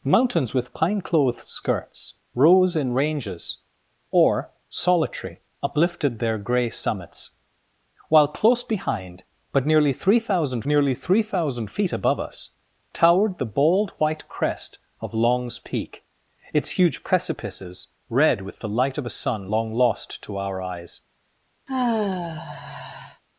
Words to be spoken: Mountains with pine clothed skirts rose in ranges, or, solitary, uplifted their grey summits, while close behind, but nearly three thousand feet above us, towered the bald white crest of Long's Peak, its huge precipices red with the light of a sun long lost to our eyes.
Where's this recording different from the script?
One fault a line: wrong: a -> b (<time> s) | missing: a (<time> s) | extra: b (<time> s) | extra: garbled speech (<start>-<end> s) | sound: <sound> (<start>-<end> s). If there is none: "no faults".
extra: nearly three thousand (10.7 s)
sound: sigh (21.7-23.2 s)